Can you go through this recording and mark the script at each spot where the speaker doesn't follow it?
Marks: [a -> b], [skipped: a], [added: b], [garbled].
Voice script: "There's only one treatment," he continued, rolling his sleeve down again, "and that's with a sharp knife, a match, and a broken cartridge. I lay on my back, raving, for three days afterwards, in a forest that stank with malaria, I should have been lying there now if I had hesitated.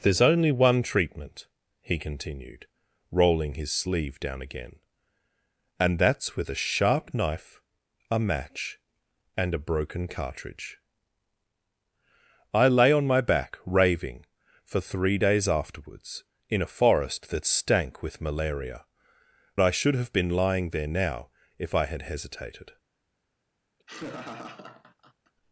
"There's only one treatment," he continued, rolling his sleeve down again, "and that's with a sharp knife, a match, and a broken cartridge. I lay on my back, raving, for three days afterwards, in a forest that stank with malaria, I should have been lying there now if I had hesitated.